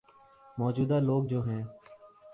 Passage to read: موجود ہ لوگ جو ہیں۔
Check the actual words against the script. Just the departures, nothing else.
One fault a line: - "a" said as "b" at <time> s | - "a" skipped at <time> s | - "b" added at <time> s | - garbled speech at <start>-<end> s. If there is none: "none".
none